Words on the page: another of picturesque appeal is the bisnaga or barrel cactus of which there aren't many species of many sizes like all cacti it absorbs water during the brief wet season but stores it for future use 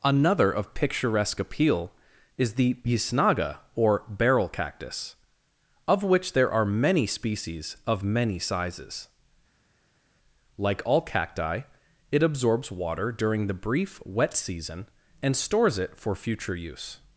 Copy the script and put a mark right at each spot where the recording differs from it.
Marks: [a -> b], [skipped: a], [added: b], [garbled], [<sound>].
another of picturesque appeal is the bisnaga or barrel cactus of which there [aren't -> are] many species of many sizes like all cacti it absorbs water during the brief wet season [but -> and] stores it for future use